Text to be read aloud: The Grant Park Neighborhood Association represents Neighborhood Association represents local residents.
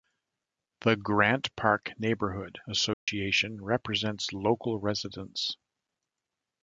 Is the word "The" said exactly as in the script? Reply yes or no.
yes